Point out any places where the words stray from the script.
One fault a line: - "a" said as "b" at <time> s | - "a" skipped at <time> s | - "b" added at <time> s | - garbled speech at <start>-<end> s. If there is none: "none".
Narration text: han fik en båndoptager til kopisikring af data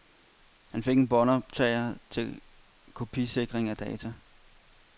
none